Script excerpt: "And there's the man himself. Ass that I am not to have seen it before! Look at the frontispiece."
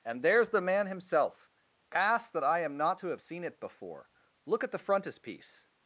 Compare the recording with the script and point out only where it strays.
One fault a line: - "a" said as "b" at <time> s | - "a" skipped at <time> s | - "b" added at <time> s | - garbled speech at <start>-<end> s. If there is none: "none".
none